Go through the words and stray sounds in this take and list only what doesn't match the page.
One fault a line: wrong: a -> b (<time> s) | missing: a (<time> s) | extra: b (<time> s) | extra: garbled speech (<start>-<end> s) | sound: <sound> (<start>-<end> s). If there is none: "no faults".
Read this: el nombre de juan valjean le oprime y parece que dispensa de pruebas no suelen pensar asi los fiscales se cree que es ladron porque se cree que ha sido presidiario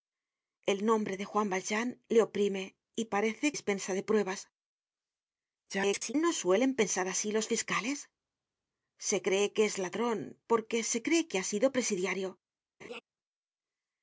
missing: que (3.5 s)
extra: garbled speech (5.7-6.1 s)
sound: laugh (12.8-13.0 s)